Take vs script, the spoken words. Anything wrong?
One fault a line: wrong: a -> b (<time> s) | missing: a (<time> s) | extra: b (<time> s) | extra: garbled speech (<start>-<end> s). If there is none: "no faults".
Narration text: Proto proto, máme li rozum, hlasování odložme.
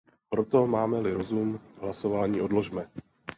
missing: proto (0.7 s)